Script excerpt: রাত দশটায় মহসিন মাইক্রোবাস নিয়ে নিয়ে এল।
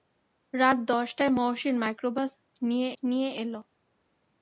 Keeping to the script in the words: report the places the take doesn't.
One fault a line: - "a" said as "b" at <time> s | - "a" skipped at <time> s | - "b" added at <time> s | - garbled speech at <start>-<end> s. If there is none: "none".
none